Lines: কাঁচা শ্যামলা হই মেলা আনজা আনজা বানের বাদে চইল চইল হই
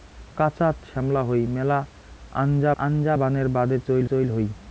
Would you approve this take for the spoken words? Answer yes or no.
yes